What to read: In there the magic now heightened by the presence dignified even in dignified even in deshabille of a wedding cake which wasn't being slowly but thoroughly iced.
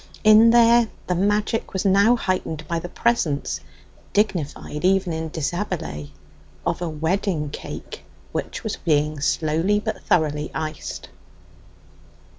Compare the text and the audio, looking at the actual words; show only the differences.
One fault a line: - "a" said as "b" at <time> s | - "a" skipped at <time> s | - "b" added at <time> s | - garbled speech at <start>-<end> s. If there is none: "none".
- "was" added at 1.7 s
- "dignified even in" skipped at 5.3 s
- "wasn't" said as "was" at 8.6 s